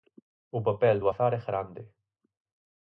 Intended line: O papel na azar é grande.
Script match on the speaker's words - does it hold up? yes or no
no